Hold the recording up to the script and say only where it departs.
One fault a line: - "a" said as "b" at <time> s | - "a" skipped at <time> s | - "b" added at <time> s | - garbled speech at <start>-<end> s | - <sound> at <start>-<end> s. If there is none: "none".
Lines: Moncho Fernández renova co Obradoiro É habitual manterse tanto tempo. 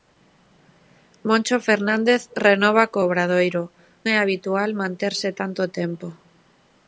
none